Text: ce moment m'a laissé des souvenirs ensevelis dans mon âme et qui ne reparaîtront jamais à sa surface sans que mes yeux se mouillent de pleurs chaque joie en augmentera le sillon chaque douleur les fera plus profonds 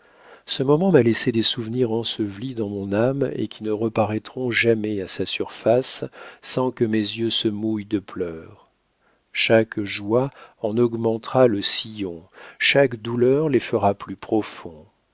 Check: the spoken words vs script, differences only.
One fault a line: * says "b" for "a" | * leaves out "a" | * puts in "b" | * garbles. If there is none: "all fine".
all fine